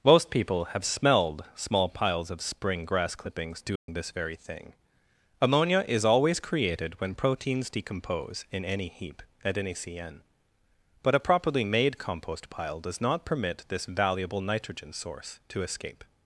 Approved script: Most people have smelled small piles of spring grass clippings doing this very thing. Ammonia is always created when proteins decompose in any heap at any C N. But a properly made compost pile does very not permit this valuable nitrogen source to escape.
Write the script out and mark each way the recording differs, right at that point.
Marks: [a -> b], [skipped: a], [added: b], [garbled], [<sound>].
Most people have smelled small piles of spring grass clippings doing [dropout] this very thing. Ammonia is always created when proteins decompose in any heap at any C N. But a properly made compost pile does [skipped: very] not permit this valuable nitrogen source to escape.